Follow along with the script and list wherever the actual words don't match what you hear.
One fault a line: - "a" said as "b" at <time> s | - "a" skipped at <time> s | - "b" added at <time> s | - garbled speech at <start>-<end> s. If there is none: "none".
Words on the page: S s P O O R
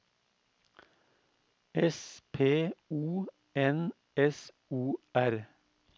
- "s" skipped at 2.2 s
- "N S" added at 3.5 s